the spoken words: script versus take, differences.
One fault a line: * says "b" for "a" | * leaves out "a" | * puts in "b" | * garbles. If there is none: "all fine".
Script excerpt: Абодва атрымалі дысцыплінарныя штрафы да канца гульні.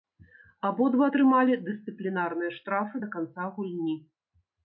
all fine